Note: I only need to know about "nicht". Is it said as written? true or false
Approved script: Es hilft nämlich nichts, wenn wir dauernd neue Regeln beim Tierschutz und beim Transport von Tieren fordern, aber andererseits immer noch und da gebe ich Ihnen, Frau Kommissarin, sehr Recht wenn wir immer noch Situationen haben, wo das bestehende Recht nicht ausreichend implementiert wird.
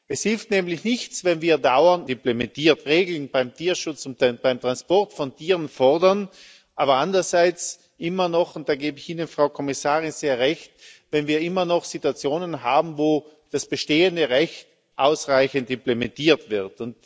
false